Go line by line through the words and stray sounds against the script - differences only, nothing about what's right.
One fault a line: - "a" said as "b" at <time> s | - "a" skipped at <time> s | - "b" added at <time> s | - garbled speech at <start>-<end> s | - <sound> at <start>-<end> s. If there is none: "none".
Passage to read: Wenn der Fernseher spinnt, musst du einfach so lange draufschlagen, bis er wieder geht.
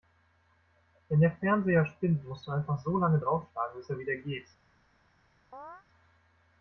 - chirp at 5.5-5.8 s